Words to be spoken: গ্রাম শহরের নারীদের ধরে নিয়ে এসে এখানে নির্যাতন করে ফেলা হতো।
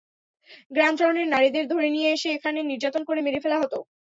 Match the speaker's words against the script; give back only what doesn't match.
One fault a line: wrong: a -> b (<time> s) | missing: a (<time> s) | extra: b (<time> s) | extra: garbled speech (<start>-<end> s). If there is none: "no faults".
extra: মেরে (3.2 s)